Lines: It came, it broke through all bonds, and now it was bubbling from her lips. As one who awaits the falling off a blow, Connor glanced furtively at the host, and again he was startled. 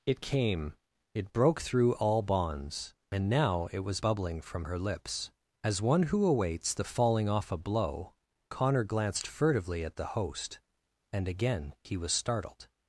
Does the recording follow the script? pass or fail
pass